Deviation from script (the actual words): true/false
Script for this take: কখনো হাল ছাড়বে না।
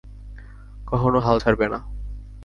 false